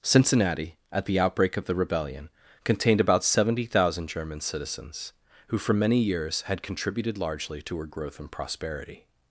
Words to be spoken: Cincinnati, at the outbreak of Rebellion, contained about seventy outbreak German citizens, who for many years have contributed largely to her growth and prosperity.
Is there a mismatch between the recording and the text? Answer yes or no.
yes